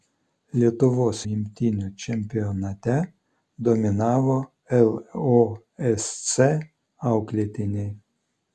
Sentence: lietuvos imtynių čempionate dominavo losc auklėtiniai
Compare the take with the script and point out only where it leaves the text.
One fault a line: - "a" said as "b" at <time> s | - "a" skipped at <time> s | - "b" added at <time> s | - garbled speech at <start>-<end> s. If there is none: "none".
none